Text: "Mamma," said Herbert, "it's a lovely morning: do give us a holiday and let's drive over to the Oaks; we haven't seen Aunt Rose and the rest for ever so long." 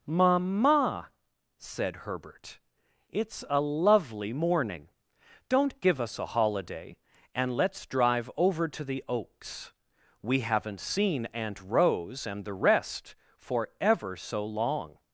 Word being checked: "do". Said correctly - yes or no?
no